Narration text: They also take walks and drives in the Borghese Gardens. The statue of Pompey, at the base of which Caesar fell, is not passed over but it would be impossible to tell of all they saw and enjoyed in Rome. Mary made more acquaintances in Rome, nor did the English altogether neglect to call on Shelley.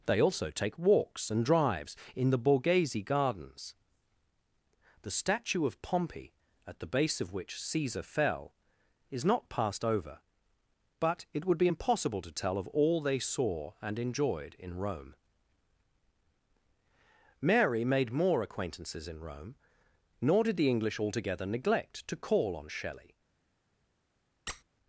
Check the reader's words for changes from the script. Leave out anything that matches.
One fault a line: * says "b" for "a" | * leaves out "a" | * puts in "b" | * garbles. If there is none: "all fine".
all fine